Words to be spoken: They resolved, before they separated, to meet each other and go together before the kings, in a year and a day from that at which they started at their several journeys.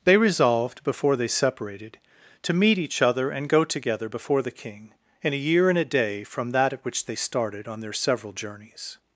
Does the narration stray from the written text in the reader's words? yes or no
yes